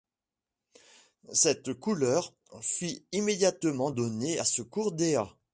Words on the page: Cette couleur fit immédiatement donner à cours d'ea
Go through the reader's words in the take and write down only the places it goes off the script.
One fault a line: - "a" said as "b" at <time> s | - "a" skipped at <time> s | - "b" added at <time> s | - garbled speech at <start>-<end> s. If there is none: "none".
- "ce" added at 4.4 s